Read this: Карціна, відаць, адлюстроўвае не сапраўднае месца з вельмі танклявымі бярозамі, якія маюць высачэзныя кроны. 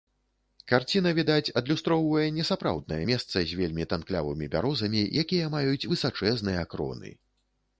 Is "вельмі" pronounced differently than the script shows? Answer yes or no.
no